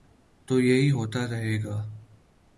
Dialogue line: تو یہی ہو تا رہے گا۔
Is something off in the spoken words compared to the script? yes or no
no